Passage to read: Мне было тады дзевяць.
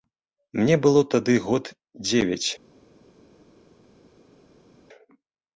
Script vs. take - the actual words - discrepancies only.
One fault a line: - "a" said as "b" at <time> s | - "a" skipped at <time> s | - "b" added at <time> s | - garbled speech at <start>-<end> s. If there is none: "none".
- "год" added at 1.5 s